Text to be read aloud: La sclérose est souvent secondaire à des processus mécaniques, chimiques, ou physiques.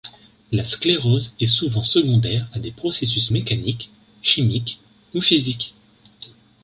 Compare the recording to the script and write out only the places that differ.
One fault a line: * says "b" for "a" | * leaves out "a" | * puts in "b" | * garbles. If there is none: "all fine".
all fine